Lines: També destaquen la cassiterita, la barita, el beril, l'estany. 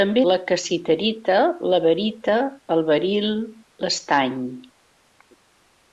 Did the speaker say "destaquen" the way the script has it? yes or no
no